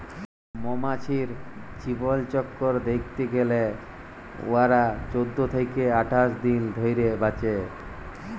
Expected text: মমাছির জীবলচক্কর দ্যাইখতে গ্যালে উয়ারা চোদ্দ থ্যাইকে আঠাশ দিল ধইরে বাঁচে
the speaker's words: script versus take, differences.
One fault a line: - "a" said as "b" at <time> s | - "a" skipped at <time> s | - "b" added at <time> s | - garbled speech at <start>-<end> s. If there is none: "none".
none